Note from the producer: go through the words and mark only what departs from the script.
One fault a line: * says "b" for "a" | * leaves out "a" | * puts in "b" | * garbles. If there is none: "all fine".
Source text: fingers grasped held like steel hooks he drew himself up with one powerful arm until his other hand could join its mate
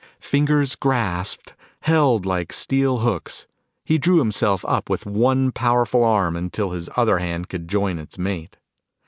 all fine